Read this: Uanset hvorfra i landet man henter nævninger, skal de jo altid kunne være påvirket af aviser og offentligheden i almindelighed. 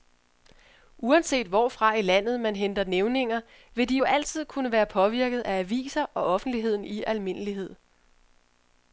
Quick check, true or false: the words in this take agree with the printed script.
false